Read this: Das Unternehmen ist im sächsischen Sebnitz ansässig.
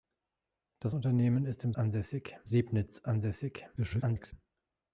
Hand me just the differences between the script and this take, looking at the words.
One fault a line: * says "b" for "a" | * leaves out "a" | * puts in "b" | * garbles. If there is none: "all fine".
* says "ansässig" for "sächsischen"
* garbles